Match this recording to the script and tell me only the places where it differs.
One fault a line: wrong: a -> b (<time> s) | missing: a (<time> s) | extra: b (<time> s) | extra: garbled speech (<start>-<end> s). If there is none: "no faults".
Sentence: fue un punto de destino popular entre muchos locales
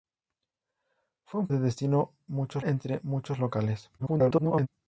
missing: punto (1.5 s)
wrong: popular -> muchos (2.3 s)
extra: garbled speech (4.0-4.7 s)